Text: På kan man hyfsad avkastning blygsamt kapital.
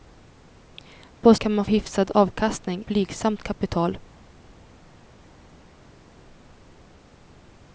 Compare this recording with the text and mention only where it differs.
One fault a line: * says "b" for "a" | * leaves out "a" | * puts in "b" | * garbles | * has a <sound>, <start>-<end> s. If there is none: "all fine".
all fine